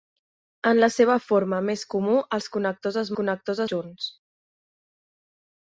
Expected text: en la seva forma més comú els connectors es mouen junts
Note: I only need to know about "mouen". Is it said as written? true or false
false